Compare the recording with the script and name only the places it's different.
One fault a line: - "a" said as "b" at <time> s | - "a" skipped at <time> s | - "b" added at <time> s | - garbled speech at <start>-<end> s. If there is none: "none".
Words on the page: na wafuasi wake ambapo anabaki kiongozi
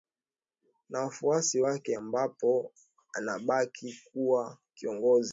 - "kuwa" added at 4.1 s